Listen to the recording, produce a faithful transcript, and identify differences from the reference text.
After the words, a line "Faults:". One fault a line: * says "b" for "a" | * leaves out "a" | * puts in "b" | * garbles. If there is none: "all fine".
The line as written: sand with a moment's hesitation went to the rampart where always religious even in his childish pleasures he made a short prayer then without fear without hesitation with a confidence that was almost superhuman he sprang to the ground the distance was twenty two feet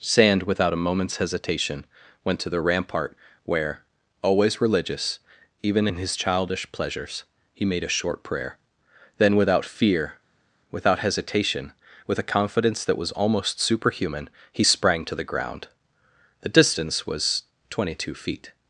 sand without a moment's hesitation went to the rampart where always religious even in his childish pleasures he made a short prayer then without fear without hesitation with a confidence that was almost superhuman he sprang to the ground the distance was twenty two feet
Faults:
* says "without" for "with"